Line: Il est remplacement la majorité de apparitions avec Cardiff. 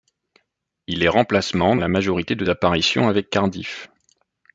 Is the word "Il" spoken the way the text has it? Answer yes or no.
yes